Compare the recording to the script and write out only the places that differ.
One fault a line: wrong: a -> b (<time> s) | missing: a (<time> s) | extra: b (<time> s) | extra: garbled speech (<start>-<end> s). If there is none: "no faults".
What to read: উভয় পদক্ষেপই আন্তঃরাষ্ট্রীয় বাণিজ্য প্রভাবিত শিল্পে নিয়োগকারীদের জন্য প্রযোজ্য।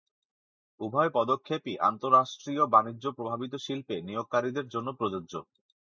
no faults